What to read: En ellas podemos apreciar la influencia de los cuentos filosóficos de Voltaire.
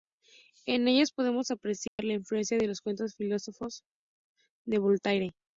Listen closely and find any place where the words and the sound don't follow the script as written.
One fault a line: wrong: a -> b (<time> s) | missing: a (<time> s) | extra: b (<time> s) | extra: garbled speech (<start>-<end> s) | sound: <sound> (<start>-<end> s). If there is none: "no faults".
sound: dropout (1.9-2.0 s)